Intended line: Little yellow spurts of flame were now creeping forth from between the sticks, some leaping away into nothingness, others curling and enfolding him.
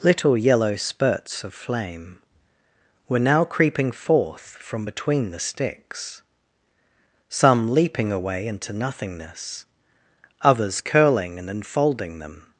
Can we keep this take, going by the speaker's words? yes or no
no